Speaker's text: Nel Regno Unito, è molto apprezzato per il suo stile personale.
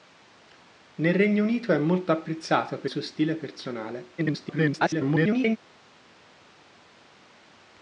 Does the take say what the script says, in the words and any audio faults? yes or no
no